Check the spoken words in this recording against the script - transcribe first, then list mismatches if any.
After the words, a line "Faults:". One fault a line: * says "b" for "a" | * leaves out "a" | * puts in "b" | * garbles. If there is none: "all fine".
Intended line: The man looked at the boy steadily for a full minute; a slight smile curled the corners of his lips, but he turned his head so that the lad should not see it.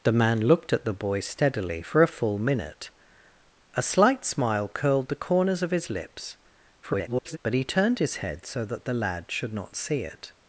The man looked at the boy steadily for a full minute; a slight smile curled the corners of his lips, [garbled] but he turned his head so that the lad should not see it.
Faults:
* garbles